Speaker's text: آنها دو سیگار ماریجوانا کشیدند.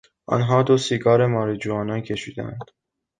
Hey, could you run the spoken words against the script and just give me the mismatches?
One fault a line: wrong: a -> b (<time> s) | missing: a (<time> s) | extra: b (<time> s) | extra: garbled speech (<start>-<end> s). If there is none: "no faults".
no faults